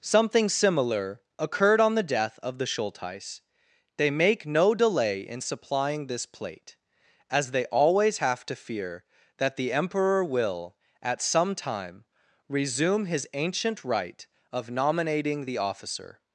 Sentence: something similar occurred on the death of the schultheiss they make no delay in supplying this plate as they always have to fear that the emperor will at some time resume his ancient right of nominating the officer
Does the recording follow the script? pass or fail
pass